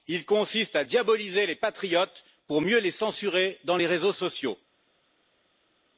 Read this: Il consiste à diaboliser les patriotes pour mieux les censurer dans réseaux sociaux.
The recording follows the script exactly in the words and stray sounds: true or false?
false